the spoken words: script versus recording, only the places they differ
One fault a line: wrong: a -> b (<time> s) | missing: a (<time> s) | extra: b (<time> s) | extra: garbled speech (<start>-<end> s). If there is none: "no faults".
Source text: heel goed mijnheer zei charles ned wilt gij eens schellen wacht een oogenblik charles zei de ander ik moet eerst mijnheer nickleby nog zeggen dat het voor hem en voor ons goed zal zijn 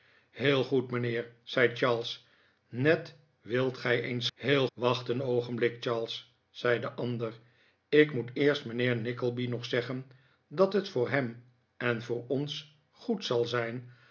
wrong: schellen -> heel (4.3 s)